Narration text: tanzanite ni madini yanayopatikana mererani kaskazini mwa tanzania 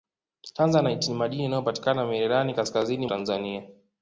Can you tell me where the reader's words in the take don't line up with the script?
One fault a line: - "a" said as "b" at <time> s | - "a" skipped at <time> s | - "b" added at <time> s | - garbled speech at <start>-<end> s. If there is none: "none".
- "mwa" skipped at 3.1 s